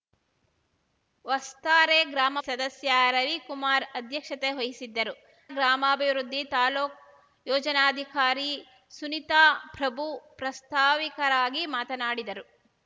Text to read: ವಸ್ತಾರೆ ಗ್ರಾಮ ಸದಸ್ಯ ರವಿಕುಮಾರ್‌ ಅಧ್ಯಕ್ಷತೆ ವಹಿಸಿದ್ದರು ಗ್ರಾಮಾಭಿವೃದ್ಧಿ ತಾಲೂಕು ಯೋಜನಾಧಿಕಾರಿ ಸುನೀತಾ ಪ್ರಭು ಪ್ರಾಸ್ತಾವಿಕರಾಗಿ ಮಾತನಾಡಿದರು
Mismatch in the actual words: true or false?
false